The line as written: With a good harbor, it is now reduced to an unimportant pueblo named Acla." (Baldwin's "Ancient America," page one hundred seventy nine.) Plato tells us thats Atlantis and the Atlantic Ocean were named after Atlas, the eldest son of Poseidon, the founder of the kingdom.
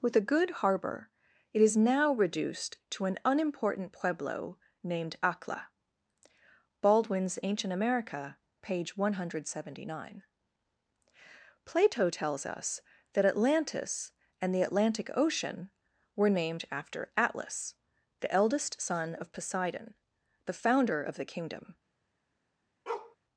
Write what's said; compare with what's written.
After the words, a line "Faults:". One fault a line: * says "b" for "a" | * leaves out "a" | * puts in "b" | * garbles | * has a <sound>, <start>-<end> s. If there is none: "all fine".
With a good harbor, it is now reduced to an unimportant pueblo named Acla." (Baldwin's "Ancient America," page one hundred seventy nine.) Plato tells us that Atlantis and the Atlantic Ocean were named after Atlas, the eldest son of Poseidon, the founder of the kingdom.
Faults:
* says "that" for "thats"
* has a bark, 22.9-23.2 s